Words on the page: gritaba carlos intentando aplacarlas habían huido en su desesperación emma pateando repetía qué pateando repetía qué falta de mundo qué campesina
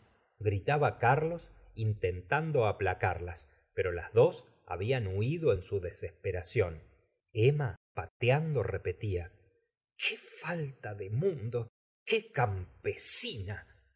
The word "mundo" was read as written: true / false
true